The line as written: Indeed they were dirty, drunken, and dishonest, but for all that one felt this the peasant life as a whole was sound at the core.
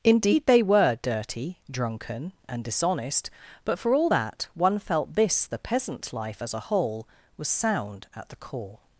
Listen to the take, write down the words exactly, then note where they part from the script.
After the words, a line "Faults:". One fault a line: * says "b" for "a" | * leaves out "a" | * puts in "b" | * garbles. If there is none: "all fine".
Indeed they were dirty, drunken, and dishonest, but for all that one felt this the peasant life as a whole was sound at the core.
Faults:
all fine